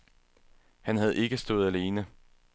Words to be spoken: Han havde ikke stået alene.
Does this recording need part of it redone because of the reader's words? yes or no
no